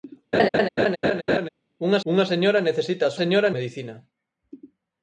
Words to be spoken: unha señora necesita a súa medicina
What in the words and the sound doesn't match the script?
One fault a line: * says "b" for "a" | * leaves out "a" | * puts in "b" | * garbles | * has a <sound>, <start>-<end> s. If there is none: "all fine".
* has a laugh, 0.3-1.5 s
* puts in "unha"
* says "señora" for "súa"